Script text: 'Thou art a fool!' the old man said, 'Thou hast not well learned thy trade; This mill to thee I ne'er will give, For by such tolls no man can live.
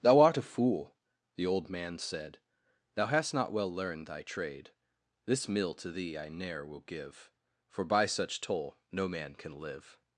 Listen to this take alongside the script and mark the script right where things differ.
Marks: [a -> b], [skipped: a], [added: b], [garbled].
'Thou art a fool!' the old man said, 'Thou hast not well learned thy trade; This mill to thee I ne'er will give, For by such [tolls -> toll] no man can live.